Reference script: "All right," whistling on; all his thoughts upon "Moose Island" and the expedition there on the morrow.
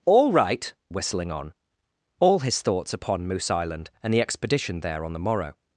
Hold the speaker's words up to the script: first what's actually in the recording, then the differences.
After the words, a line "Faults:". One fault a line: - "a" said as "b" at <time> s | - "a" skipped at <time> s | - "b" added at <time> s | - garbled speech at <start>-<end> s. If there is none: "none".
"All right," whistling on; all his thoughts upon "Moose Island" and the expedition there on the morrow.
Faults:
none